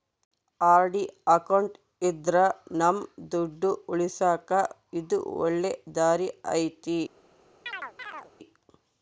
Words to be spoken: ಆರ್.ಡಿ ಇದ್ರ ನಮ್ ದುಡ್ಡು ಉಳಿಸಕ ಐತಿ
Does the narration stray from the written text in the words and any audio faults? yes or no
yes